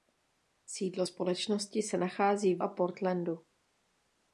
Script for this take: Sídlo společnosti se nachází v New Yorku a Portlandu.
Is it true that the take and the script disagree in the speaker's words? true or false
true